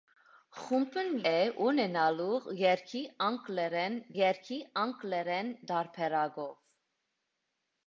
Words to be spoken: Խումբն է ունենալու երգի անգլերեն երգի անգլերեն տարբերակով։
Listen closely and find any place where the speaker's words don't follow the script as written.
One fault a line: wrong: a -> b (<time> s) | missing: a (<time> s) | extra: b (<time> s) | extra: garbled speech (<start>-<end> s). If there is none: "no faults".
no faults